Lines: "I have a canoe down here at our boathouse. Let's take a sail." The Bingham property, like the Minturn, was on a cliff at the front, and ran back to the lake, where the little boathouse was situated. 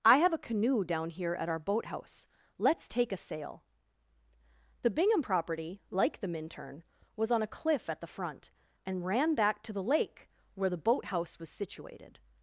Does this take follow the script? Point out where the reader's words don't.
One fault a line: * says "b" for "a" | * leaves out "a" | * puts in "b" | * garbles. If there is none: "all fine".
* leaves out "little"